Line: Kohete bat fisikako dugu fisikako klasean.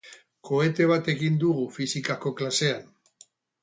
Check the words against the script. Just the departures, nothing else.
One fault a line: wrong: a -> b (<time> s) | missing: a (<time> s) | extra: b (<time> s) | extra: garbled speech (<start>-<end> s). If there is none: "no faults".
wrong: fisikako -> egin (1.1 s)